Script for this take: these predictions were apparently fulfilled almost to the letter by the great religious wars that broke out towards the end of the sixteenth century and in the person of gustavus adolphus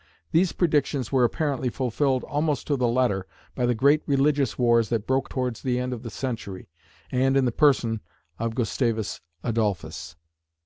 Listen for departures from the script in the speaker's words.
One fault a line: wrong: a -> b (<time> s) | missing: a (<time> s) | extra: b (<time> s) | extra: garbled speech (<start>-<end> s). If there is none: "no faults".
missing: out (5.3 s)
missing: sixteenth (6.1 s)